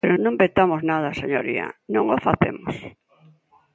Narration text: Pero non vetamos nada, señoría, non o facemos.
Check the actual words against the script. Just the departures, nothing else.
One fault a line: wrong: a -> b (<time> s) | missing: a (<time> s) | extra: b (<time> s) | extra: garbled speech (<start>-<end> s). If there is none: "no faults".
no faults